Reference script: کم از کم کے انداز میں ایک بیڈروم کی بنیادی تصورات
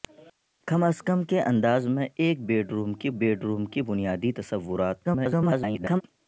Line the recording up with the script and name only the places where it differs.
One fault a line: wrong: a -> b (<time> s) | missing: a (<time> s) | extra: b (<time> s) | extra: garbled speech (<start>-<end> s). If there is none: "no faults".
extra: بیڈروم کی (3.2 s)
extra: garbled speech (5.0-6.0 s)